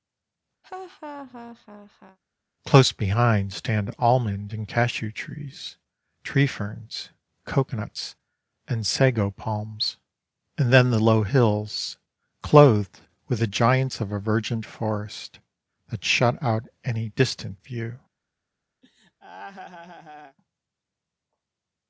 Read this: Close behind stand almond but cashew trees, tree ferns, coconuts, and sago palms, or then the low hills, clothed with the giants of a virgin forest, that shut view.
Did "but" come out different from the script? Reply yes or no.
yes